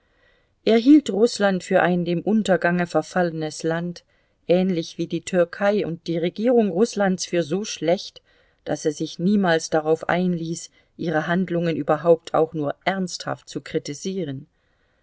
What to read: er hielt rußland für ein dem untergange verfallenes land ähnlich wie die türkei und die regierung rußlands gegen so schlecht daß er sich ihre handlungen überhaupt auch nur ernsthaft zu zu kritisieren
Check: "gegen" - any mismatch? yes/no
yes